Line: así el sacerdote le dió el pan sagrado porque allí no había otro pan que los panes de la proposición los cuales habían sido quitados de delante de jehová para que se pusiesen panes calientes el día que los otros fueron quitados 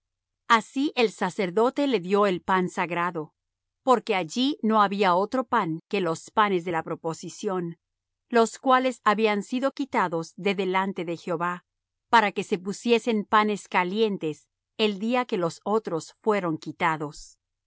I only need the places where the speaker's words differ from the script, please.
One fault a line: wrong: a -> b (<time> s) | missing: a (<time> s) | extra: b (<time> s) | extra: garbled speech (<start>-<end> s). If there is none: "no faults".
no faults